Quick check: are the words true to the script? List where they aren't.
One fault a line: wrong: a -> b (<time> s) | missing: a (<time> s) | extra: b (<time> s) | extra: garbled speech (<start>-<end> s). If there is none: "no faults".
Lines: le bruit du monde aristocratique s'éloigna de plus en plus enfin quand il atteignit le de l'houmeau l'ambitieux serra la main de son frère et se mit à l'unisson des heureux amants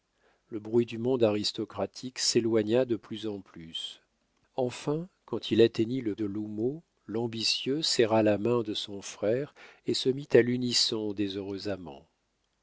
no faults